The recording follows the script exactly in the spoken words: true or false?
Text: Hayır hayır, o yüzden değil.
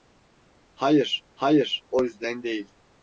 true